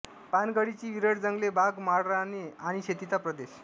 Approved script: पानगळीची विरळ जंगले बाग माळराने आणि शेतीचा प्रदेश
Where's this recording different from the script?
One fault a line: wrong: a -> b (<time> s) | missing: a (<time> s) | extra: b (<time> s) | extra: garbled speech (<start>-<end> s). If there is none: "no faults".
no faults